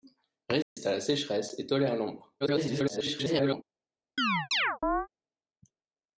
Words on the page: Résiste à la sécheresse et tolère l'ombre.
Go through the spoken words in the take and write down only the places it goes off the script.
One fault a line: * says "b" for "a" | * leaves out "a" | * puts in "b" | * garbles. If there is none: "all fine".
* garbles